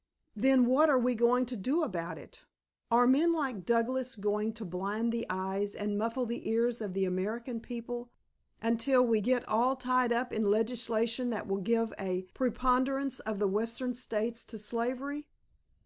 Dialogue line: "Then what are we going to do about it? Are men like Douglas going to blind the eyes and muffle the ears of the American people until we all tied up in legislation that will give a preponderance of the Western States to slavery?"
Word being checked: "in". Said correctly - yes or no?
yes